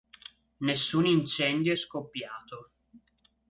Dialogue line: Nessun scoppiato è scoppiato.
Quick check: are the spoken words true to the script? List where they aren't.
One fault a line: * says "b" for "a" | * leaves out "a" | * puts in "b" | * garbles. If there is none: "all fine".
* says "incendio" for "scoppiato"